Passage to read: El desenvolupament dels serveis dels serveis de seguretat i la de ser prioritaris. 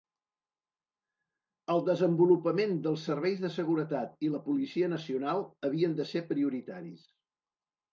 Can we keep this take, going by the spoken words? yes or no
no